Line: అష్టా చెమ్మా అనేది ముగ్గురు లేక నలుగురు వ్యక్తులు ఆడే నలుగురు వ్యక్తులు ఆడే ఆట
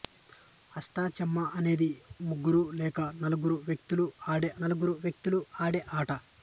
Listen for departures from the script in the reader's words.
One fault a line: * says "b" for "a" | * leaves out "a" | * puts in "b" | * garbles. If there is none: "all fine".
all fine